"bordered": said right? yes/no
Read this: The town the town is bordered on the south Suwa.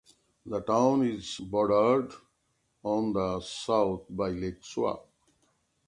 yes